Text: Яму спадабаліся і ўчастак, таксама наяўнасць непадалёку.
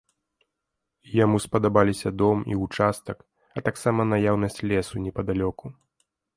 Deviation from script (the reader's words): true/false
true